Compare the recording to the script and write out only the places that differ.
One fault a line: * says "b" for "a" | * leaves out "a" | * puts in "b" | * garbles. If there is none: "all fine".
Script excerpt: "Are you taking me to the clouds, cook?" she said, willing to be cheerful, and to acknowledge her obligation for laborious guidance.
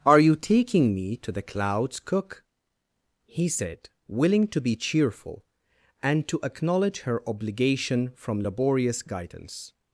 * says "he" for "she"
* says "from" for "for"